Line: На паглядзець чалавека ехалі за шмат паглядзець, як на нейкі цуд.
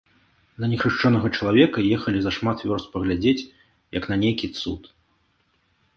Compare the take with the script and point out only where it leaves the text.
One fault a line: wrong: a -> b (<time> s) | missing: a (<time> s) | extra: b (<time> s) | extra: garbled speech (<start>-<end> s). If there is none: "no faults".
wrong: паглядзець -> нехрышчонага (0.7 s)
extra: вёрст (2.7 s)